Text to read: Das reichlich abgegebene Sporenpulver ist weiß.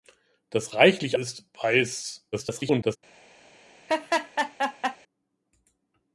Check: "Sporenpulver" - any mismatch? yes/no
yes